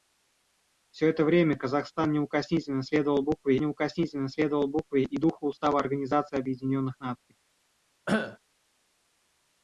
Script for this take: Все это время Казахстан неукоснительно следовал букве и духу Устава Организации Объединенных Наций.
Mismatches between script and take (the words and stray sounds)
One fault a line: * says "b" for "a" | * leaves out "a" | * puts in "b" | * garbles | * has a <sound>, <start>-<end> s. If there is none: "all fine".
* puts in "неукоснительно следовал букве"
* has a cough, 8.1-8.4 s